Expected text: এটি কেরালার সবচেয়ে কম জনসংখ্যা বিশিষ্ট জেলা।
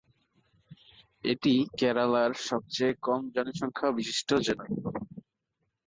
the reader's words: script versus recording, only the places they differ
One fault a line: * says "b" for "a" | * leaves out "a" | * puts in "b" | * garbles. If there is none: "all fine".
all fine